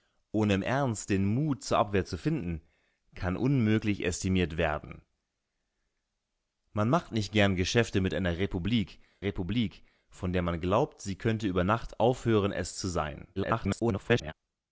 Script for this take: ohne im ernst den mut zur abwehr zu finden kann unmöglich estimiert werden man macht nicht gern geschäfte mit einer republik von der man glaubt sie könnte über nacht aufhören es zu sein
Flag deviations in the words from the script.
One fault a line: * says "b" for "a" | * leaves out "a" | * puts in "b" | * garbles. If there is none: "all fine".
* puts in "republik"
* garbles